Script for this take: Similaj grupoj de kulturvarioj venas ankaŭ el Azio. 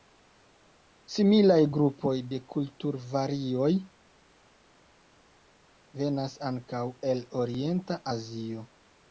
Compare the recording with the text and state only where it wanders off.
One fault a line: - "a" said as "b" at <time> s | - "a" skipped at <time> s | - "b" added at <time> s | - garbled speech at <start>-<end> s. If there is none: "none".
- "orienta" added at 7.4 s